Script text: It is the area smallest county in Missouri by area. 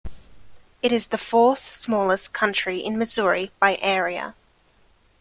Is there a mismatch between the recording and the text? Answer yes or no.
yes